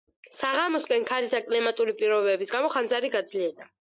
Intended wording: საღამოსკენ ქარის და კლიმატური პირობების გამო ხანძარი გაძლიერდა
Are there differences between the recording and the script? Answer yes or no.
no